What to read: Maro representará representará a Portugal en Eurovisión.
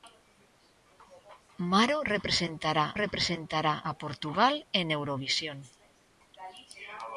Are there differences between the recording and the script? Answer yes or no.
no